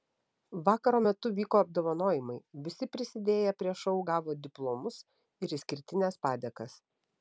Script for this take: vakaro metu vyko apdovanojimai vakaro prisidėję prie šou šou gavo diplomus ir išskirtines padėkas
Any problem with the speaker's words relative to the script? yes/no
yes